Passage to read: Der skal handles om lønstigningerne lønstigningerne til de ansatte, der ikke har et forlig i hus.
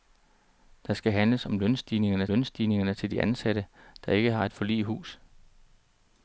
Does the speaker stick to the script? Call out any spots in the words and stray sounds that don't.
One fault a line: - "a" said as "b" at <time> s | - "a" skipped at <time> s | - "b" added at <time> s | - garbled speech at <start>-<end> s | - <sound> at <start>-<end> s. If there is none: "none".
none